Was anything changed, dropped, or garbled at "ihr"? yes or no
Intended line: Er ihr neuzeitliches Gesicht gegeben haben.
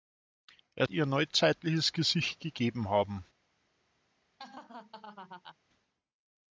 no